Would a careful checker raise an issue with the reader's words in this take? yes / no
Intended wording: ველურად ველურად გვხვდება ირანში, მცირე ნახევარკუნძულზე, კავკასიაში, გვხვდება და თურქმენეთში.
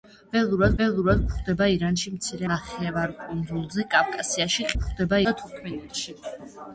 no